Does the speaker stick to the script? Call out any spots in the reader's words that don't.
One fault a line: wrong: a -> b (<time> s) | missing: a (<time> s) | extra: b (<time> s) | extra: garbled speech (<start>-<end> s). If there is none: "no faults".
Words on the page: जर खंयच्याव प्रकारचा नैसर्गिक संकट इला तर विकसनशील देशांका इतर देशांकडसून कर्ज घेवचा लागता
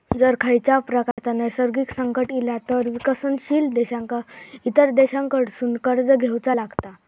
no faults